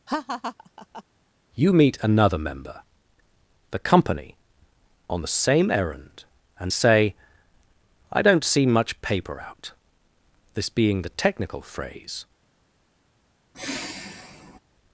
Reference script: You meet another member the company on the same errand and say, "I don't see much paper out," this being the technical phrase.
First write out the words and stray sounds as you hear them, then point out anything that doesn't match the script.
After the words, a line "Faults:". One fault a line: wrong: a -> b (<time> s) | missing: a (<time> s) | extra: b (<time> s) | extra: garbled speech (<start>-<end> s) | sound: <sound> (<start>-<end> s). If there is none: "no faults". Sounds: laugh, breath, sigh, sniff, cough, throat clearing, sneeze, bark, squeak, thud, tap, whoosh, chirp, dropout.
You meet another member the company on the same errand and say, "I don't see much paper out," this being the technical phrase.
Faults:
sound: laugh (0.1-1.0 s)
sound: sigh (13.5-14.6 s)